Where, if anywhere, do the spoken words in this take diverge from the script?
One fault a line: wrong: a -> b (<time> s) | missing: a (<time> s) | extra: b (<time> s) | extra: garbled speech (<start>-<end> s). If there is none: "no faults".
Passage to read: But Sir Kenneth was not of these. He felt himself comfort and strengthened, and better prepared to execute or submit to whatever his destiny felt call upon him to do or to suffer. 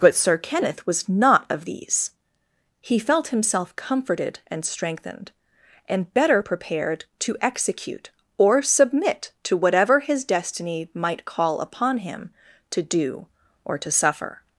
wrong: comfort -> comforted (3.8 s)
wrong: felt -> might (10.9 s)